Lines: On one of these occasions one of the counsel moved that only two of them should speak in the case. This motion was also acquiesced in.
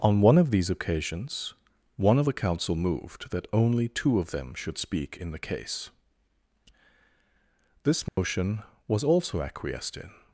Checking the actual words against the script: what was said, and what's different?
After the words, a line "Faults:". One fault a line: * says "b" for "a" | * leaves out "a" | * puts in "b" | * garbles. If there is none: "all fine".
On one of these occasions one of the counsel moved that only two of them should speak in the case. This motion was also acquiesced in.
Faults:
all fine